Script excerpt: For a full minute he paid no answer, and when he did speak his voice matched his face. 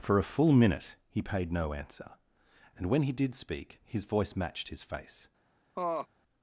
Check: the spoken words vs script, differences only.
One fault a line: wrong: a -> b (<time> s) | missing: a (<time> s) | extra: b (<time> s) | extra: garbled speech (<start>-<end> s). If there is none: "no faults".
no faults